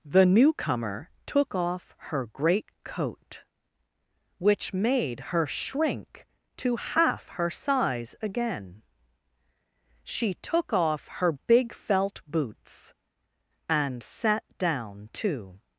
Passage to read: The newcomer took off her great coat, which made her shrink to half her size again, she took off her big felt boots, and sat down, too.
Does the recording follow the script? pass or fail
pass